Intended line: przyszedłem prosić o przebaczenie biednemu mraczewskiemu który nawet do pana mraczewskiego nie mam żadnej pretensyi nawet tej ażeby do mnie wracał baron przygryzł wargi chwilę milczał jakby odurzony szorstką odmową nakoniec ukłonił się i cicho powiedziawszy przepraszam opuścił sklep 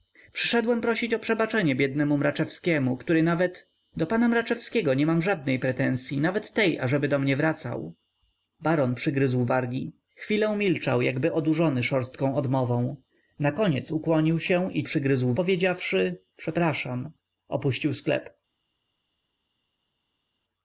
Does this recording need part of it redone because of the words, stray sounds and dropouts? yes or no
yes